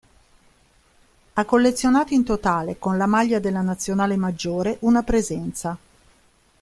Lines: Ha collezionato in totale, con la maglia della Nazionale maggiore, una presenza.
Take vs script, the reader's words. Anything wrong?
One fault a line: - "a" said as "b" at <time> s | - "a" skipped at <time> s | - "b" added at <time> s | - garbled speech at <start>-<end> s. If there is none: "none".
none